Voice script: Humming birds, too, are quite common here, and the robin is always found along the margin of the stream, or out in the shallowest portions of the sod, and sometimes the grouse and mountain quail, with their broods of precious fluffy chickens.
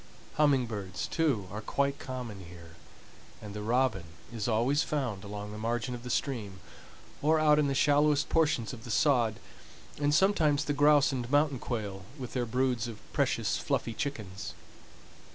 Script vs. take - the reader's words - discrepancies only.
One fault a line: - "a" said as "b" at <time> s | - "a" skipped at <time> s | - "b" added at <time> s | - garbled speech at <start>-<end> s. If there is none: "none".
none